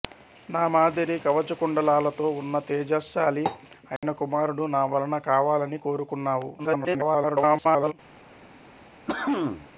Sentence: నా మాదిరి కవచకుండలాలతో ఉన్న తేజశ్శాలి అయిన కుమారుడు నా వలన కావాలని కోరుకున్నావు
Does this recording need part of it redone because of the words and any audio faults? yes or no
yes